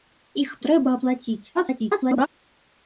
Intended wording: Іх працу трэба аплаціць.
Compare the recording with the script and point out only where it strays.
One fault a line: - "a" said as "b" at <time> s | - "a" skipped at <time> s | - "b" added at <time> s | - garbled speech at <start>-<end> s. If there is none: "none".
- "працу" skipped at 0.5 s
- garbled speech at 1.5-2.3 s